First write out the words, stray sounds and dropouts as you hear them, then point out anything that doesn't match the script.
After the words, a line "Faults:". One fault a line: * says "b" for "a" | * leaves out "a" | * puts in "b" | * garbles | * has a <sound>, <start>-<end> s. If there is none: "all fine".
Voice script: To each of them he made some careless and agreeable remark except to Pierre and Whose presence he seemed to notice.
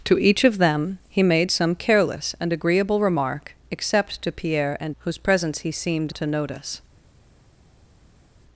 To each of them he made some careless and agreeable remark except to Pierre and Whose presence he seemed to notice.
Faults:
all fine